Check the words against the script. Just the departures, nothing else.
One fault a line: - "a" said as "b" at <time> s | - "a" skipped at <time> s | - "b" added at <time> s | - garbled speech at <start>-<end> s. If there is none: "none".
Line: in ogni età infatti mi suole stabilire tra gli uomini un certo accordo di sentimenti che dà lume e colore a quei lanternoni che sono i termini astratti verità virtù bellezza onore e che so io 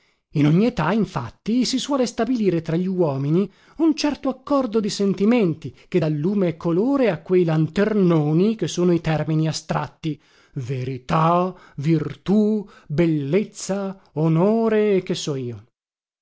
- "mi" said as "si" at 1.6 s